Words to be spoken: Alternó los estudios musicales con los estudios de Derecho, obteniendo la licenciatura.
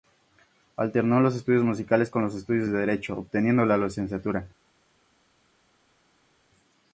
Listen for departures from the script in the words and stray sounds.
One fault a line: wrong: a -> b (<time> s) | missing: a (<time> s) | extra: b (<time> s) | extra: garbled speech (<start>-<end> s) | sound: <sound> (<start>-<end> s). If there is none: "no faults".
no faults